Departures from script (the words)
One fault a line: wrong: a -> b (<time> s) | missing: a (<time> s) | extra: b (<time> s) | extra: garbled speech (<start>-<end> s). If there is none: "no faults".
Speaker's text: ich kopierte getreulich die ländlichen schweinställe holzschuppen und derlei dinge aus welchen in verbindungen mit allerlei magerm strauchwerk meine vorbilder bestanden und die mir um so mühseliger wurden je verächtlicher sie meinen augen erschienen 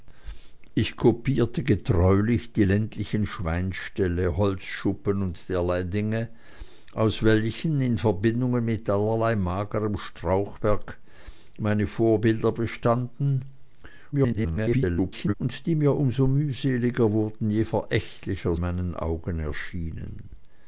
extra: garbled speech (14.1-15.3 s)
missing: sie (18.6 s)